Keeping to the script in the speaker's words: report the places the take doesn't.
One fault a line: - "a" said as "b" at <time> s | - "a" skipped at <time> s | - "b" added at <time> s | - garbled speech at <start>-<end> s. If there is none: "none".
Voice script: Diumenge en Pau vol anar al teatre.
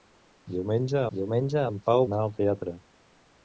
- "diumenge" added at 1.2 s
- "vol" skipped at 2.0 s